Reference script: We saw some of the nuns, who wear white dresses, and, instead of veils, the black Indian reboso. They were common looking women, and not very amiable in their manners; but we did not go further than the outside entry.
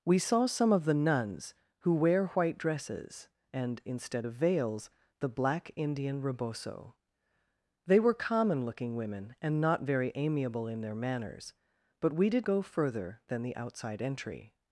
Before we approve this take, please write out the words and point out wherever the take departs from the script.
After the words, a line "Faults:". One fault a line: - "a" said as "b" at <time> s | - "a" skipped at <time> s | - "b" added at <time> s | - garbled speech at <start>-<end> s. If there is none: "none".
We saw some of the nuns, who wear white dresses, and, instead of veils, the black Indian reboso. They were common looking women, and not very amiable in their manners; but we did go further than the outside entry.
Faults:
- "not" skipped at 12.5 s